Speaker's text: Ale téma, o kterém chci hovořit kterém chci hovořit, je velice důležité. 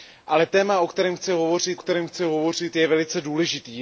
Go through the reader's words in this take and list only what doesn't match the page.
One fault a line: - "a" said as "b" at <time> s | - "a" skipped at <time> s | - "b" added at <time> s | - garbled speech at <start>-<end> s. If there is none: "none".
none